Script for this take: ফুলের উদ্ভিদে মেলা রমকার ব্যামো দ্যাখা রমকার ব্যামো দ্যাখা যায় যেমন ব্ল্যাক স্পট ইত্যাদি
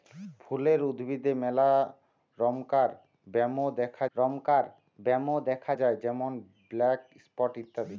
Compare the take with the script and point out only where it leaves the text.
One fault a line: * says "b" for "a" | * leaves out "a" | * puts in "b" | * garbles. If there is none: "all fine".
all fine